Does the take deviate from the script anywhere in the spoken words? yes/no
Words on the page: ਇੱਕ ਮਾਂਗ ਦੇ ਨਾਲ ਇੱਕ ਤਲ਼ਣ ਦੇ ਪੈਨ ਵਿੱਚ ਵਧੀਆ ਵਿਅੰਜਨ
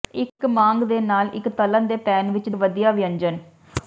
no